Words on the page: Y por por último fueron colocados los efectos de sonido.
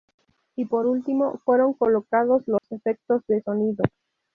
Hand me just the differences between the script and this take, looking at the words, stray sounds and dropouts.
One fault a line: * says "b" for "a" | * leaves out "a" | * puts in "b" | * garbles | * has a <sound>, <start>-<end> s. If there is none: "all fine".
* leaves out "por"
* has a dropout, 2.6-2.6 s